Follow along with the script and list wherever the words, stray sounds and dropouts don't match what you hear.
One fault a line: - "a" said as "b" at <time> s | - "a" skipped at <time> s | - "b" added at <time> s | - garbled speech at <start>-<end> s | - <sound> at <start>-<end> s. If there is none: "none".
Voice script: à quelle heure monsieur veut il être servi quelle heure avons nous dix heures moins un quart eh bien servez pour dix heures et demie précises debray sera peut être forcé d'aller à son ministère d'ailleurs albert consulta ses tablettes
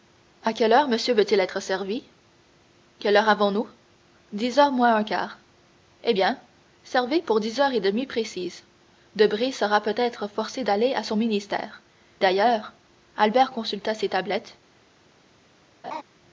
- laugh at 15.8-16.0 s